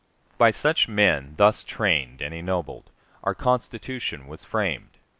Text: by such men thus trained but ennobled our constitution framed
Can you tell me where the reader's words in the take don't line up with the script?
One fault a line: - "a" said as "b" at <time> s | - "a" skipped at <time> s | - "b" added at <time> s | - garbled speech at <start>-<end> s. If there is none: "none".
- "but" said as "and" at 2.2 s
- "was" added at 4.2 s